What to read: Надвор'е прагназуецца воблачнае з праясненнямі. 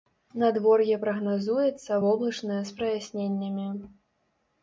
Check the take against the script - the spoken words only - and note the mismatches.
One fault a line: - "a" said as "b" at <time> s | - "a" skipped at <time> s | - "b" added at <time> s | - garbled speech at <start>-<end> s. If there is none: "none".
none